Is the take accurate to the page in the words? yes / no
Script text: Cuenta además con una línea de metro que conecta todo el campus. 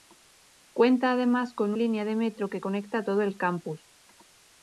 no